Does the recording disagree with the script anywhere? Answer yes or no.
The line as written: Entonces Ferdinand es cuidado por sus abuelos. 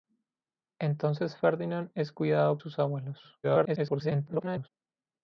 yes